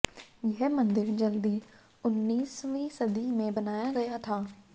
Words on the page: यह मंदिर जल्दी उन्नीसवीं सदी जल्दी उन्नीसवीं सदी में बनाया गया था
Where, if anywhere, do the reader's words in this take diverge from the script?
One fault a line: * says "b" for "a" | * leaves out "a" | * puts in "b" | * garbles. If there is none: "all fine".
* leaves out "जल्दी उन्नीसवीं सदी"